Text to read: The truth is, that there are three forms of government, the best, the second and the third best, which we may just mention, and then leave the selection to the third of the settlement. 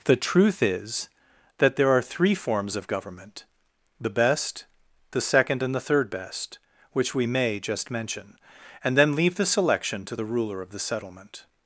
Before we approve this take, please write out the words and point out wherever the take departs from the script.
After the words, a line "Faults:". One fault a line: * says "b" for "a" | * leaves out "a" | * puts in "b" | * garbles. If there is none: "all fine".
The truth is, that there are three forms of government, the best, the second and the third best, which we may just mention, and then leave the selection to the ruler of the settlement.
Faults:
* says "ruler" for "third"